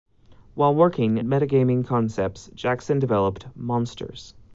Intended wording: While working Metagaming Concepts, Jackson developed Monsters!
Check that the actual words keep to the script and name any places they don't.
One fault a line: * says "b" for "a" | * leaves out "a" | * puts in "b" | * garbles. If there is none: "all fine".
all fine